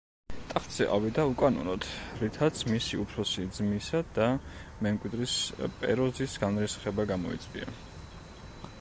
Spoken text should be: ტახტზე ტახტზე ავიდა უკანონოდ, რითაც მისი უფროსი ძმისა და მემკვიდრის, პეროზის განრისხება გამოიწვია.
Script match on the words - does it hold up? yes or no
no